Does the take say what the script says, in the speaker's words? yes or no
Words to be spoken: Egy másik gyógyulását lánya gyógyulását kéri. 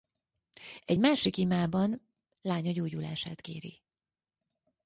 no